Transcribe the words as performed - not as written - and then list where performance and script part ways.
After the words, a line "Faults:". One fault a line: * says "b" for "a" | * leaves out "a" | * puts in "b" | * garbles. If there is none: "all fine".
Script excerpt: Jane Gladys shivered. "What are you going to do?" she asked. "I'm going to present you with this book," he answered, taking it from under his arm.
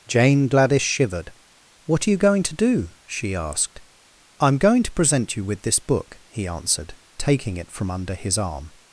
Jane Gladys shivered. "What are you going to do?" she asked. "I'm going to present you with this book," he answered, taking it from under his arm.
Faults:
all fine